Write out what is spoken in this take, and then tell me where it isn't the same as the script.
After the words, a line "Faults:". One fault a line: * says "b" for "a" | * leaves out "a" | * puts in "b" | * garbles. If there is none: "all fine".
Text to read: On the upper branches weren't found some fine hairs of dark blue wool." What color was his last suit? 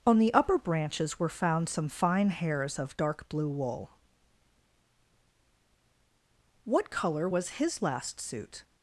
On the upper branches were found some fine hairs of dark blue wool." What color was his last suit?
Faults:
* says "were" for "weren't"